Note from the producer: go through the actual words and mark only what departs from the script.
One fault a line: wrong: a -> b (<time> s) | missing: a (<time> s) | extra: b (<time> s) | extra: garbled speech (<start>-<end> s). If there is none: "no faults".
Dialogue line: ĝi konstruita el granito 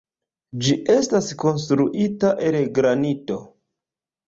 extra: estas (0.9 s)